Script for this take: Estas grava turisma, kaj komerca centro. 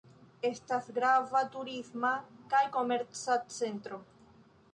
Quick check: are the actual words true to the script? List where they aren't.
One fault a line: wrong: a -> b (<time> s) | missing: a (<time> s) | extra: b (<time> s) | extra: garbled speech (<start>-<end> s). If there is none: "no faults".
no faults